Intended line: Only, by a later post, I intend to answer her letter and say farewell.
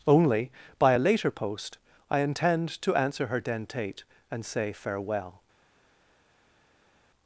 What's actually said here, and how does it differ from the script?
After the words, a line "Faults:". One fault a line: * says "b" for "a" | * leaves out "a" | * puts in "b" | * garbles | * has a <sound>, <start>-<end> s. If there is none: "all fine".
Only, by a later post, I intend to answer her dentate and say farewell.
Faults:
* says "dentate" for "letter"